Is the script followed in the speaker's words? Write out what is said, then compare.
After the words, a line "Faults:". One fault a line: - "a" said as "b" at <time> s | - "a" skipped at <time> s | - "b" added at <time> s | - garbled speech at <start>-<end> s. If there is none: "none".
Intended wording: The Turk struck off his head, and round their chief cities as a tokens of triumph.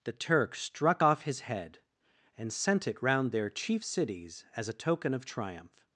The Turk struck off his head, and sent it round their chief cities as a token of triumph.
Faults:
- "sent it" added at 2.5 s
- "tokens" said as "token" at 4.7 s